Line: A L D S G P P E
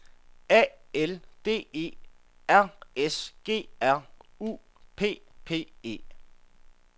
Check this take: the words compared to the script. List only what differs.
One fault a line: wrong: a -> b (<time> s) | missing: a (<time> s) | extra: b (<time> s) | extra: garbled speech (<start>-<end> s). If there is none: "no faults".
extra: E R (1.7 s)
extra: R U (3.8 s)